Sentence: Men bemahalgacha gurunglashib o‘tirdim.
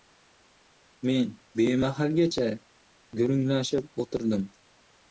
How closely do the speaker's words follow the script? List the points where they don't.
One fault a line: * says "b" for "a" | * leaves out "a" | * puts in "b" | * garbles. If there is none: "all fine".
all fine